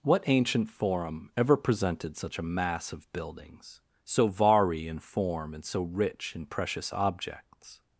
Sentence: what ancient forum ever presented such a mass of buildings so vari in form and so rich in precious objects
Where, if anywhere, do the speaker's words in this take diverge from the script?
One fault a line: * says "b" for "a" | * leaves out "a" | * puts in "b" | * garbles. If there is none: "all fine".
all fine